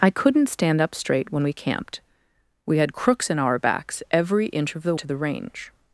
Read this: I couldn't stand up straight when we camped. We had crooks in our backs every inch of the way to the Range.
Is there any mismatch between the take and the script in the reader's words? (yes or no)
yes